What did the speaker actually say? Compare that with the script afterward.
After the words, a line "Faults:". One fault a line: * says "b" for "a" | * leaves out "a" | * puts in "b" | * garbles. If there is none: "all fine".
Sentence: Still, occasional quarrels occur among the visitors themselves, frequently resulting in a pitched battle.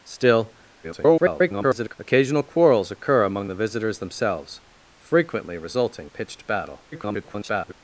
Still, [garbled] occasional quarrels occur among the visitors themselves, frequently resulting a pitched battle. [garbled]
Faults:
* garbles
* leaves out "in"
* garbles